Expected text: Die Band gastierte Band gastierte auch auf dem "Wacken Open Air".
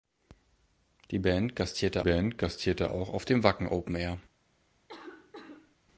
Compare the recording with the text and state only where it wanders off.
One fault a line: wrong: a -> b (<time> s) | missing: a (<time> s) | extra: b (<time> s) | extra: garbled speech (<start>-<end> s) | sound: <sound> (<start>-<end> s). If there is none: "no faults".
sound: cough (4.9-5.8 s)